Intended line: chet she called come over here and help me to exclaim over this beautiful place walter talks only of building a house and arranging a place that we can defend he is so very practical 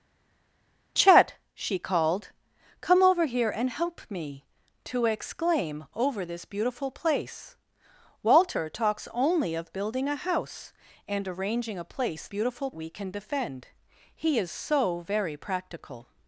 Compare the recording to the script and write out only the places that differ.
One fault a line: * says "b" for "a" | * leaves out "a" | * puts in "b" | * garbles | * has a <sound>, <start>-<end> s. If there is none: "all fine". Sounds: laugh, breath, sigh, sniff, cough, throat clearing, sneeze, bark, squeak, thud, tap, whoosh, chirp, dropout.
* says "beautiful" for "that"